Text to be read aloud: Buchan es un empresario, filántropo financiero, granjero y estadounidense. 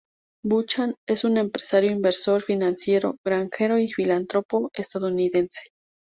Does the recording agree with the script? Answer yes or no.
no